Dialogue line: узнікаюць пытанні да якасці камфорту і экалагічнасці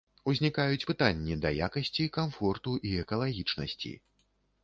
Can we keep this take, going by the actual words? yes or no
yes